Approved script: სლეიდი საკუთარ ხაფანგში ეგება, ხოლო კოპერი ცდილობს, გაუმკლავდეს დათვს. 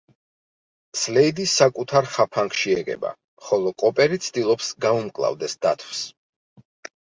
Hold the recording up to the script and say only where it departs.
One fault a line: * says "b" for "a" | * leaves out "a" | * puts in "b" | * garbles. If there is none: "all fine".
all fine